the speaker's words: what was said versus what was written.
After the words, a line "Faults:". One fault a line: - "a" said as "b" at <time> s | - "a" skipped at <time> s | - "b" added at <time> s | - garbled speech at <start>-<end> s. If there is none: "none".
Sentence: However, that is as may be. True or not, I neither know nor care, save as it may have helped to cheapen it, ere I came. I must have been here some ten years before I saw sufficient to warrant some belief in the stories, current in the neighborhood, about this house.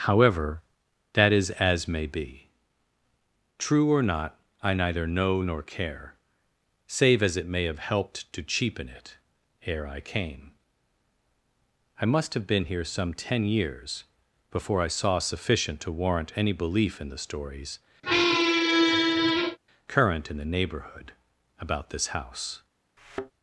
However, that is as may be. True or not, I neither know nor care, save as it may have helped to cheapen it, ere I came. I must have been here some ten years before I saw sufficient to warrant any belief in the stories, current in the neighborhood, about this house.
Faults:
- "some" said as "any" at 16.4 s